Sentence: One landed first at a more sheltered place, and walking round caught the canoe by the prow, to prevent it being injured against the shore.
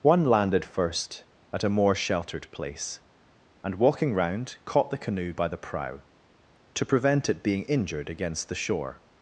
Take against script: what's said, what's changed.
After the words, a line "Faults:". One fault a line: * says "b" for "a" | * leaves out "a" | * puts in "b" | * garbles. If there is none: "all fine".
One landed first at a more sheltered place, and walking round caught the canoe by the prow, to prevent it being injured against the shore.
Faults:
all fine